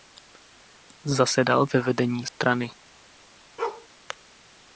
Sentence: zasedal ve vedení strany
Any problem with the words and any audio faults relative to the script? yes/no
yes